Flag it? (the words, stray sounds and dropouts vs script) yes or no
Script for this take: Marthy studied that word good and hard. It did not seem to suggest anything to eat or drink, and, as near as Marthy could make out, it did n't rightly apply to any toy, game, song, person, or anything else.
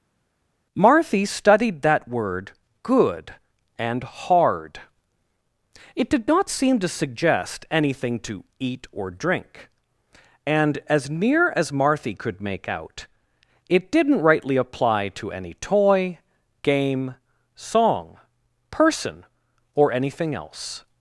no